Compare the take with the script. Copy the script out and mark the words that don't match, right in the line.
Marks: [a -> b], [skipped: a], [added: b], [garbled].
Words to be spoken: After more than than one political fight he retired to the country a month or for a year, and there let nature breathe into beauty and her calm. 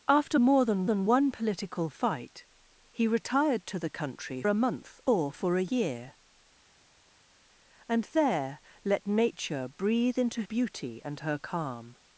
After more than than one political fight he retired to the country a month or for a year, and there let nature breathe into beauty and her calm.